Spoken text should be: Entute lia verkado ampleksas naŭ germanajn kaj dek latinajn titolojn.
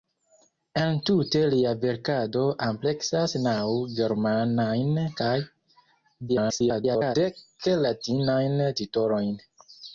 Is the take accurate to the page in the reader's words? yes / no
no